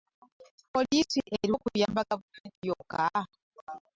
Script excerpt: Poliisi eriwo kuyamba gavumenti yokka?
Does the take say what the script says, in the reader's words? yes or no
yes